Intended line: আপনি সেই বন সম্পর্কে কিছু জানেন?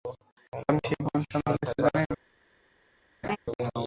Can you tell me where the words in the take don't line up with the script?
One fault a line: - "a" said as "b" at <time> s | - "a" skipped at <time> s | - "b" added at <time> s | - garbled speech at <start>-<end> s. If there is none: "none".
none